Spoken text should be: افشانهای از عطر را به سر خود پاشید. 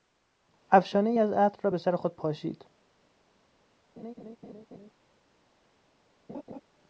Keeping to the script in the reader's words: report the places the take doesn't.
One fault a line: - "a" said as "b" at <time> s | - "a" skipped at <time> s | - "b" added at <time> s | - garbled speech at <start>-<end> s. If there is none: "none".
none